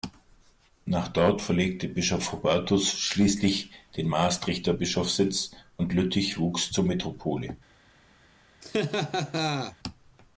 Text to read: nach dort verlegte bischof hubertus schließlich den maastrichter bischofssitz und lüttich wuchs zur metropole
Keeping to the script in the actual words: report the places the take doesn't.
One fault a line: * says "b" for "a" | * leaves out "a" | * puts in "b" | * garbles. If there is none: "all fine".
all fine